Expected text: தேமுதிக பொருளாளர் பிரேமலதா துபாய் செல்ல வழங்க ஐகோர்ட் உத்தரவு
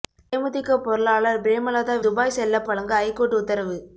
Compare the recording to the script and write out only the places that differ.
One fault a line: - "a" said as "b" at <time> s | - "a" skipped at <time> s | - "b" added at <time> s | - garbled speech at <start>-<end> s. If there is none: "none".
none